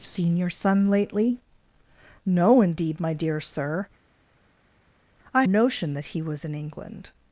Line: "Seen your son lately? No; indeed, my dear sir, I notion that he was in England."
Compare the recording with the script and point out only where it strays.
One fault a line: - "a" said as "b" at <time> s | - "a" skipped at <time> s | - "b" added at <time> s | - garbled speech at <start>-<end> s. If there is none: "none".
none